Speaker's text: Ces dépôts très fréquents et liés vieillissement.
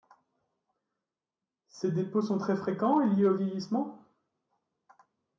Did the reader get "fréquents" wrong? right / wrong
right